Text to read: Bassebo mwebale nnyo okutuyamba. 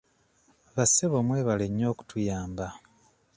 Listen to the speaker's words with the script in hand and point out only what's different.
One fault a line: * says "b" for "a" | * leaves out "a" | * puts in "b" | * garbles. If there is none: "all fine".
all fine